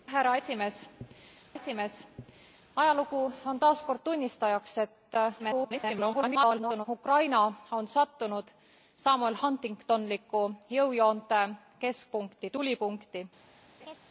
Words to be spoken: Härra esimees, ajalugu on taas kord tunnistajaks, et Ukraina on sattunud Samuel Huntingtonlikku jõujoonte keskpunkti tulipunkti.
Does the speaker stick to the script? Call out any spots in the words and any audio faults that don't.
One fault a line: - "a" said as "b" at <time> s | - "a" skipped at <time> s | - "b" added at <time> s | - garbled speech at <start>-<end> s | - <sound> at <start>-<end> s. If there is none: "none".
- "esimees" added at 1.5 s
- garbled speech at 5.4-6.9 s
- laugh at 13.8-14.0 s